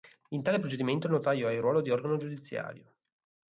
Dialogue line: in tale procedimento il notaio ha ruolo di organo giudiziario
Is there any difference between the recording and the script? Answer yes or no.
yes